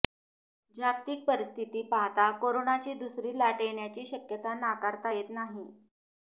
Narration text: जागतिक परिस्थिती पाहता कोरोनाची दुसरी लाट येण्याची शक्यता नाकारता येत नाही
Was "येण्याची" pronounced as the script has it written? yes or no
yes